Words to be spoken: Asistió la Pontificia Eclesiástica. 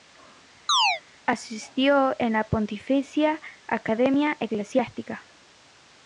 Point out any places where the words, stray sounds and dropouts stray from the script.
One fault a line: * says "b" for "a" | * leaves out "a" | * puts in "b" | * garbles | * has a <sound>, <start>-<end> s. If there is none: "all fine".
* has a chirp, 0.7-1.0 s
* puts in "en"
* puts in "Academia"